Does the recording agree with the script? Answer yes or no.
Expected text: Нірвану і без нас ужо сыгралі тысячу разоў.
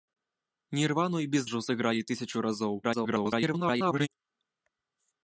no